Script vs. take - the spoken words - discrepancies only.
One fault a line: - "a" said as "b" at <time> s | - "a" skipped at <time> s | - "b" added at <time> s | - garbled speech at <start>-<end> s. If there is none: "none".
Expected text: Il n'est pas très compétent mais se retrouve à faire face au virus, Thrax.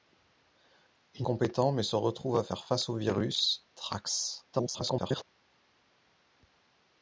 - "n'est pas très" skipped at 1.3 s
- garbled speech at 4.5-5.2 s